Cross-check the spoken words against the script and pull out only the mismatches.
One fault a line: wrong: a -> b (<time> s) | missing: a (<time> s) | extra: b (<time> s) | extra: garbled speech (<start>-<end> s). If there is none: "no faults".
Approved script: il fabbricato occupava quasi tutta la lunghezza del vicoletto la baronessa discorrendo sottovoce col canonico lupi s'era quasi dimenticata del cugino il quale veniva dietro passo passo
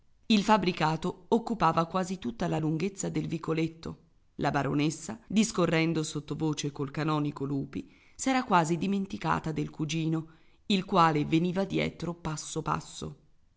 no faults